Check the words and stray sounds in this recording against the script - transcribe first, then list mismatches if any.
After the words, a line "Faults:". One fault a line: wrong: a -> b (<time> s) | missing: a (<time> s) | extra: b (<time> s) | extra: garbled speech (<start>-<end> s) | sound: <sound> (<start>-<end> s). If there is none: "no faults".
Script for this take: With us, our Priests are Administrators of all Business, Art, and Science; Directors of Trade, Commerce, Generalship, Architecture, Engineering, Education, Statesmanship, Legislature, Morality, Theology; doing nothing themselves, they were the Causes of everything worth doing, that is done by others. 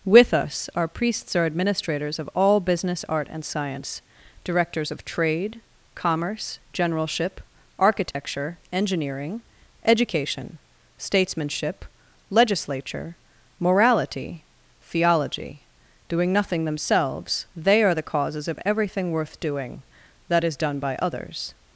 With us, our Priests are Administrators of all Business, Art, and Science; Directors of Trade, Commerce, Generalship, Architecture, Engineering, Education, Statesmanship, Legislature, Morality, Theology; doing nothing themselves, they are the Causes of everything worth doing, that is done by others.
Faults:
sound: dropout (8.1-8.1 s)
wrong: were -> are (17.8 s)